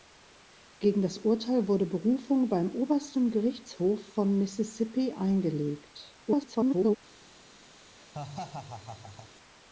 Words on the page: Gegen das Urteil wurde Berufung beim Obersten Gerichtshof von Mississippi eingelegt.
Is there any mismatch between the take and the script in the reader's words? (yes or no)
yes